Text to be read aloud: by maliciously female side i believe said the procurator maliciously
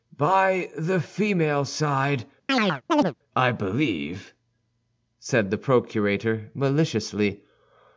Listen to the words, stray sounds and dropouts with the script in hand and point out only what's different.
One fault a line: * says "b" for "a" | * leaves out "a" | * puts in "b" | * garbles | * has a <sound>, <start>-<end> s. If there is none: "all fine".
* says "the" for "maliciously"
* has a chirp, 2.5-3.1 s